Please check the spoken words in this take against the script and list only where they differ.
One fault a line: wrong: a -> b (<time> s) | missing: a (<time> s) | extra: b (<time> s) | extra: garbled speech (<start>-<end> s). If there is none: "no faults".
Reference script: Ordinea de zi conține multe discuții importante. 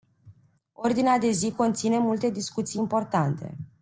no faults